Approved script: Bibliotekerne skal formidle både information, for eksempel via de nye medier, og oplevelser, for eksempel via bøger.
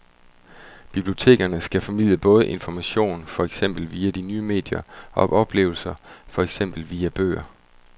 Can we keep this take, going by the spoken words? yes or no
yes